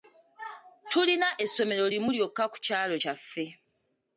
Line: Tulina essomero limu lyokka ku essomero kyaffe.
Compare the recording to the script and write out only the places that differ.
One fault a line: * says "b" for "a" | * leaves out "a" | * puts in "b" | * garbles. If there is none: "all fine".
* says "kyalo" for "essomero"